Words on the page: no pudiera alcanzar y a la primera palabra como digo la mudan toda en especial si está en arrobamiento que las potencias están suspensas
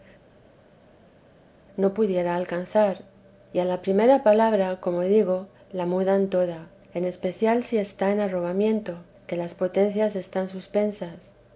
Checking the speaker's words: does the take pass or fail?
pass